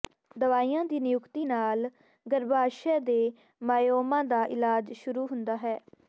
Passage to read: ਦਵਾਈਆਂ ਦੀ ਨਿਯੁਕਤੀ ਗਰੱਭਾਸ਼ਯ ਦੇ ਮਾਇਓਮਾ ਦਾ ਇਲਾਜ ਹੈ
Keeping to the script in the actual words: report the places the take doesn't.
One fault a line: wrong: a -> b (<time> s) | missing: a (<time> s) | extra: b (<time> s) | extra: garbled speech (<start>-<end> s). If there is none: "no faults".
extra: ਨਾਲ (1.4 s)
extra: ਸ਼ੁਰੂ ਹੁੰਦਾ (4.9 s)